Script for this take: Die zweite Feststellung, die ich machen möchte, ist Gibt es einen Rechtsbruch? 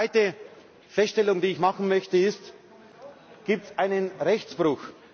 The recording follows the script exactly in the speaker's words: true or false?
true